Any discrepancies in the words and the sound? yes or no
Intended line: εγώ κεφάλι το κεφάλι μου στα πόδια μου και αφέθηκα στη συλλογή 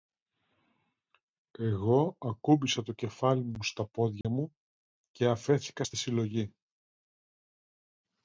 yes